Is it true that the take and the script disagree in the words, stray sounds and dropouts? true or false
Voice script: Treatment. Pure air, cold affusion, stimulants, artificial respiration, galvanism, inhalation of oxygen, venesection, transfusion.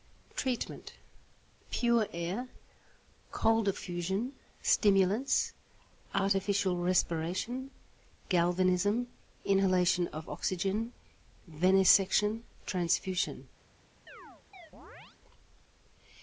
true